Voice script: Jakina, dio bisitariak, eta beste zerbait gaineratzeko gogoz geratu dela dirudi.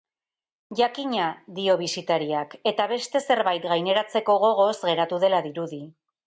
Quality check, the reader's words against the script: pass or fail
pass